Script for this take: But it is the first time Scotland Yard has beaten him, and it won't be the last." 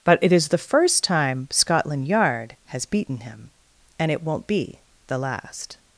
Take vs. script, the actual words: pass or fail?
pass